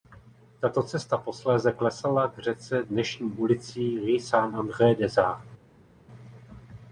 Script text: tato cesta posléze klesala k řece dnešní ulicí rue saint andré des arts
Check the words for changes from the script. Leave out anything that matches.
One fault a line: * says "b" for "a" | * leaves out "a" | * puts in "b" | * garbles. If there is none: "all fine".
all fine